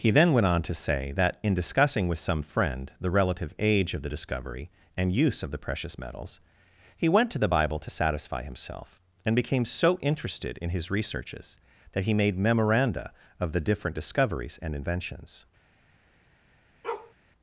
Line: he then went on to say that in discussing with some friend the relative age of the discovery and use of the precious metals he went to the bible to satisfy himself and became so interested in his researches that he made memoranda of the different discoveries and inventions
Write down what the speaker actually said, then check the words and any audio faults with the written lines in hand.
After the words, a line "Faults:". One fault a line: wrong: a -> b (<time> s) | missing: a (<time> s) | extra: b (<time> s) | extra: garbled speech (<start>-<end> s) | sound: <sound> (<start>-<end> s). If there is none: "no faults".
he then went on to say that in discussing with some friend the relative age of the discovery and use of the precious metals he went to the bible to satisfy himself and became so interested in his researches that he made memoranda of the different discoveries and inventions
Faults:
sound: bark (16.8-17.1 s)